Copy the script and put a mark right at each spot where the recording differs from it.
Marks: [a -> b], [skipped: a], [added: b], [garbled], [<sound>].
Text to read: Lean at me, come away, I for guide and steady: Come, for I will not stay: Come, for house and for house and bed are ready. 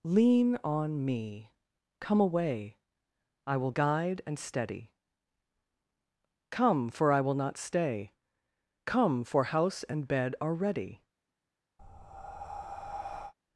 Lean [at -> on] me, come away, I [for -> will] guide and steady: Come, for I will not stay: Come, for house and [skipped: for house and] bed are ready. [breath]